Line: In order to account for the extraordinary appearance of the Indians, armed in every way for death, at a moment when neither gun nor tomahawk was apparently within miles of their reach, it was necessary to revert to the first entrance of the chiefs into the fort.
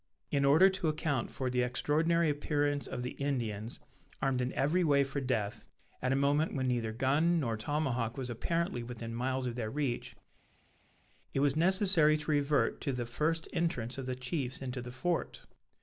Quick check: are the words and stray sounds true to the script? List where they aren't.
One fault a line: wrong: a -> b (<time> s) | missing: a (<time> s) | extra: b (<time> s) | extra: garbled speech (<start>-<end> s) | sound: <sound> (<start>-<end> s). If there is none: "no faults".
no faults